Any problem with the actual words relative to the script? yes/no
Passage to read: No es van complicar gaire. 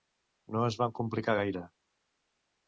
no